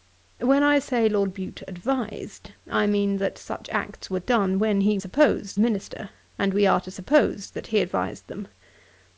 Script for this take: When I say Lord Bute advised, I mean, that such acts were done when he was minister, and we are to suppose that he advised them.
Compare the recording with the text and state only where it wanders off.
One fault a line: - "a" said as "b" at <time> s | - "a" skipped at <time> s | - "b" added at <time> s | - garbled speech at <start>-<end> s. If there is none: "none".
- "was" said as "suppose" at 5.0 s